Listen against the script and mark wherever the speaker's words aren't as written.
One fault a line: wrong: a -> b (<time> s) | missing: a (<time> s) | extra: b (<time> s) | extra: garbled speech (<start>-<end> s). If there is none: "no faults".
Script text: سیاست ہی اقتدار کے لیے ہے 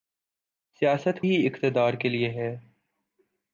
no faults